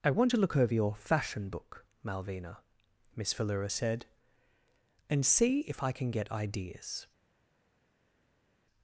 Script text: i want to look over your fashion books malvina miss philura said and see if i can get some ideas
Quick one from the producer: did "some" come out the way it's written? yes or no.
no